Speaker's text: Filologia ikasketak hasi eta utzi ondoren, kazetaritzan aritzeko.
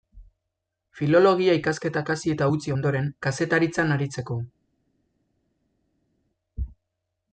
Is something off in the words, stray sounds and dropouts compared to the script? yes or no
no